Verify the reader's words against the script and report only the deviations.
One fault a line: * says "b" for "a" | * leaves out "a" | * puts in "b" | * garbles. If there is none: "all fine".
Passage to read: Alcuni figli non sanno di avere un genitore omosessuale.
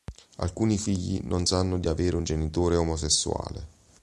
all fine